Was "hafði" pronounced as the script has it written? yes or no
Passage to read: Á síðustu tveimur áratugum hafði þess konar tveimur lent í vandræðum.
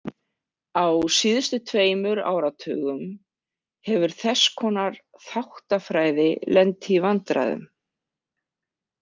no